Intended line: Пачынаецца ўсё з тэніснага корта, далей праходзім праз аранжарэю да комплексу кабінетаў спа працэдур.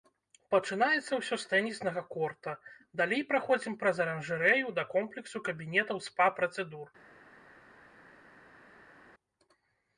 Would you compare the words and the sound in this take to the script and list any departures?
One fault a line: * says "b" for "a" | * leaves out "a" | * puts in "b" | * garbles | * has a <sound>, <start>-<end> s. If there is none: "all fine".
all fine